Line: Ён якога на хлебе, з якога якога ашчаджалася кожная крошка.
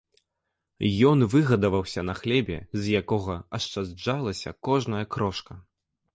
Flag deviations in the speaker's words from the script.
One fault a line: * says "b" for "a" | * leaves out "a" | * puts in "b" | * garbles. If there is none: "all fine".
* says "выгадаваўся" for "якога"
* leaves out "якога"